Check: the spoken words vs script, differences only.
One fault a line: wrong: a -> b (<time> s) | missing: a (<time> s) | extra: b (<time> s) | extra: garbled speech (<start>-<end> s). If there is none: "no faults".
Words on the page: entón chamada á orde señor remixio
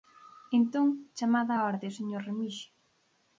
no faults